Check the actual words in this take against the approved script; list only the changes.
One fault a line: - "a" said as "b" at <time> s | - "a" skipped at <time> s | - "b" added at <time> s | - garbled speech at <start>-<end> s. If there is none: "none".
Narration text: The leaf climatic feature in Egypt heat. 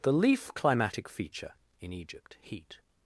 none